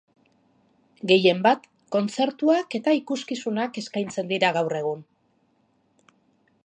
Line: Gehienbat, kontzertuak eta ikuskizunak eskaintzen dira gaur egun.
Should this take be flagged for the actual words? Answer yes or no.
no